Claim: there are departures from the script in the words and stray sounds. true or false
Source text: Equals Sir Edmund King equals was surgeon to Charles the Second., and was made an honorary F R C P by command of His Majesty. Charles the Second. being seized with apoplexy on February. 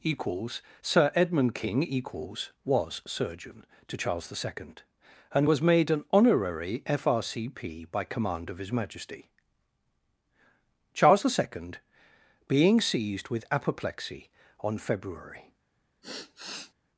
true